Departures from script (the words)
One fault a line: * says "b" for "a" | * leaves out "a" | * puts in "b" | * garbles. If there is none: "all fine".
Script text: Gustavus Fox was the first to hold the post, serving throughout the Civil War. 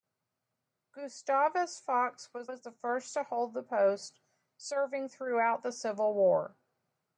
* puts in "was"